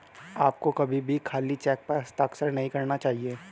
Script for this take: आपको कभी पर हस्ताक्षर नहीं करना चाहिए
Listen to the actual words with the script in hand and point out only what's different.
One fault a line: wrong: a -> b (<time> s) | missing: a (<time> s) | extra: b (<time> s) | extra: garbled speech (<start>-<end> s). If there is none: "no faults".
extra: भी खाली चेक (1.0 s)